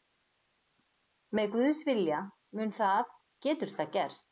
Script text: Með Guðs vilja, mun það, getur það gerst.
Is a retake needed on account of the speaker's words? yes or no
no